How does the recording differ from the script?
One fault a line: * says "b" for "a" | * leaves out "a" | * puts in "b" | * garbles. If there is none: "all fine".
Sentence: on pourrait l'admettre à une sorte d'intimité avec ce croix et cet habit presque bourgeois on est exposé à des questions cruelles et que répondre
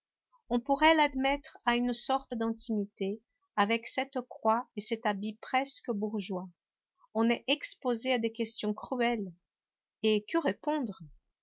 * says "cette" for "ce"